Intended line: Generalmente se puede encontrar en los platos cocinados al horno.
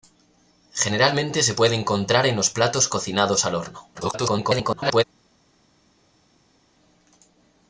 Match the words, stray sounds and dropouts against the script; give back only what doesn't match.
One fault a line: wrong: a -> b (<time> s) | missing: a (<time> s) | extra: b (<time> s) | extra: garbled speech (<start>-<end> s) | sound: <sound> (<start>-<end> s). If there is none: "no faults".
extra: garbled speech (3.9-5.0 s)